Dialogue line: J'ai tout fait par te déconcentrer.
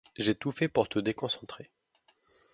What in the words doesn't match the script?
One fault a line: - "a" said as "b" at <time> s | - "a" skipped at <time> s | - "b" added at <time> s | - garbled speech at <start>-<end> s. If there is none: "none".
- "par" said as "pour" at 0.7 s